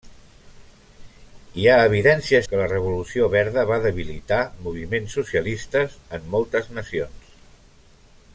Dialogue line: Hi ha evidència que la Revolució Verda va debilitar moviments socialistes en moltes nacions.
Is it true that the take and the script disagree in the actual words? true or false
false